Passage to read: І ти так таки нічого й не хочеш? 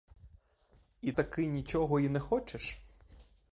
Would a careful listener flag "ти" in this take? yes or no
yes